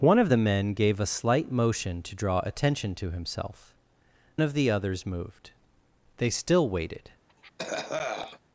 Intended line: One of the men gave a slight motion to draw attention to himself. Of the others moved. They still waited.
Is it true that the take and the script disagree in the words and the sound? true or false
true